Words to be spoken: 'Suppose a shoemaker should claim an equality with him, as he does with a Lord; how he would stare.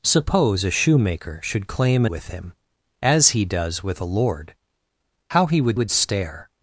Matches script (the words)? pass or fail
fail